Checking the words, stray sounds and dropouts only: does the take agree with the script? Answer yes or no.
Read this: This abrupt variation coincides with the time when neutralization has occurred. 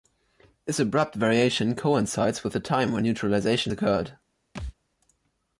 no